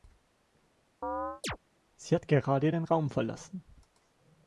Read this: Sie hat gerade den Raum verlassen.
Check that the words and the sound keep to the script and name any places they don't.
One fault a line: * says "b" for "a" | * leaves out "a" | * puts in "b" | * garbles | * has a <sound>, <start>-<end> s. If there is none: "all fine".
* has a chirp, 1.0-1.6 s